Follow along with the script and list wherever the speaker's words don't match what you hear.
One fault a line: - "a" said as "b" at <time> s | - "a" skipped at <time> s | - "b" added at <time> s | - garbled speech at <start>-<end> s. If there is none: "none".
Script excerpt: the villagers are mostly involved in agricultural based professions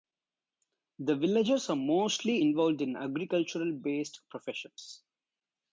none